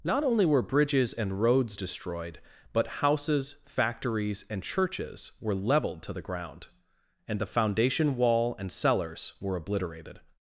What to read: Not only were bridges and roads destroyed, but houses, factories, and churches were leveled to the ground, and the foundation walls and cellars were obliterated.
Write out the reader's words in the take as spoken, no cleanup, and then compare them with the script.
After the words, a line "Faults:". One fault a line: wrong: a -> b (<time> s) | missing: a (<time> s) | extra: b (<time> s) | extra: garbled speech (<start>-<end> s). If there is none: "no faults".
Not only were bridges and roads destroyed, but houses, factories, and churches were leveled to the ground, and the foundation wall and cellars were obliterated.
Faults:
wrong: walls -> wall (8.2 s)